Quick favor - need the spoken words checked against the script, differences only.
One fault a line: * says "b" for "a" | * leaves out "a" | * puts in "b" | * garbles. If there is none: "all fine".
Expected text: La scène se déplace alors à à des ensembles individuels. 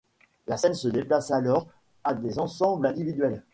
* leaves out "à"